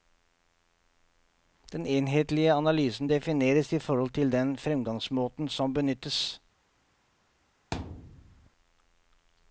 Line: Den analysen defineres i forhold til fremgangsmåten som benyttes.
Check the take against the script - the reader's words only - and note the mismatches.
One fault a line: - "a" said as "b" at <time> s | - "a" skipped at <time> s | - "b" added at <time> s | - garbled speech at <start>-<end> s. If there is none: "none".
- "enhetlige" added at 1.9 s
- "den" added at 4.3 s